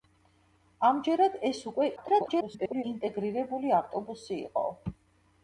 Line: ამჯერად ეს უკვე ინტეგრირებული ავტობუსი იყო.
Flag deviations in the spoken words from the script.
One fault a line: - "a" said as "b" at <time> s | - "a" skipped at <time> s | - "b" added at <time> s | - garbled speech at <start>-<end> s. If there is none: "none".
- garbled speech at 2.0-2.8 s